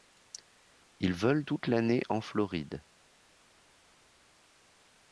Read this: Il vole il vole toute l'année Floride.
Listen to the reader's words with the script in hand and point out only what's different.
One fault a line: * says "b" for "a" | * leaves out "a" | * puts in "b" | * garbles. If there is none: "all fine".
* leaves out "il vole"
* puts in "en"